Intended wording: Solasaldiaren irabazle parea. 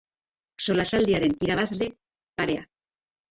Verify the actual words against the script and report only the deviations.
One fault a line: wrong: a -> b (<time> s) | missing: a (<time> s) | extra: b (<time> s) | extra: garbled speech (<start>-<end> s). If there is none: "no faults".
no faults